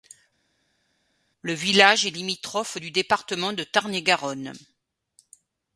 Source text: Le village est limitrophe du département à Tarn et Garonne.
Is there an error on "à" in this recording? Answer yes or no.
yes